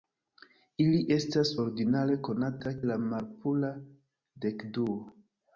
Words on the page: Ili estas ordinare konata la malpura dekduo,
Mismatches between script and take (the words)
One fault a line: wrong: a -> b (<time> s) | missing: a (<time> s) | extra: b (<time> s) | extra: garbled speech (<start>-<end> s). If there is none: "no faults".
no faults